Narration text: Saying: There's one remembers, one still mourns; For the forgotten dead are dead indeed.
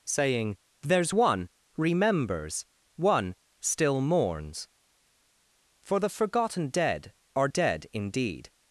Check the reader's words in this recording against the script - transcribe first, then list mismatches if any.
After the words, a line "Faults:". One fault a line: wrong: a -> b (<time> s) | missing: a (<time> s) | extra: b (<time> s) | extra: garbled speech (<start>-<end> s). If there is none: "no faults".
Saying: There's one remembers, one still mourns; For the forgotten dead are dead indeed.
Faults:
no faults